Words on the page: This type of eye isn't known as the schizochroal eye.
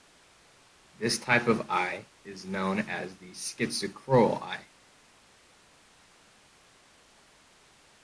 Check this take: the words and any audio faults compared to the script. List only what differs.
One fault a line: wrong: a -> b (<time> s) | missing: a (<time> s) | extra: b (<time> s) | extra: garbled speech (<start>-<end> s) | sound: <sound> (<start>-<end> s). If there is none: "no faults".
wrong: isn't -> is (2.2 s)